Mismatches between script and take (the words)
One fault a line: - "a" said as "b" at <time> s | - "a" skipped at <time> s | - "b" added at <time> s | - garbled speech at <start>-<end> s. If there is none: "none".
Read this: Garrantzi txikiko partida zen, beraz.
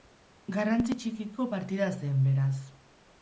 none